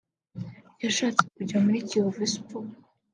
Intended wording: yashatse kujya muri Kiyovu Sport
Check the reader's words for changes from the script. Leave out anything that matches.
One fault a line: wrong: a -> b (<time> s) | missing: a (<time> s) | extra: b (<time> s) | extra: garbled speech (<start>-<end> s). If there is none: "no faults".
no faults